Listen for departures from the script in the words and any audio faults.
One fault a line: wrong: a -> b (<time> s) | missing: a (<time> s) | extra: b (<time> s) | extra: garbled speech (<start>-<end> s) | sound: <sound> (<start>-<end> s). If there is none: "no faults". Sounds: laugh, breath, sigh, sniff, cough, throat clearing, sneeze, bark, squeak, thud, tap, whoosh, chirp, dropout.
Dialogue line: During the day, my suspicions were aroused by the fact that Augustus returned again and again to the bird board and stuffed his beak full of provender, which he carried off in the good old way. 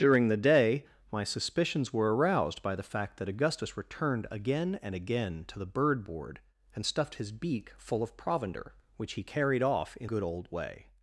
missing: the (10.1 s)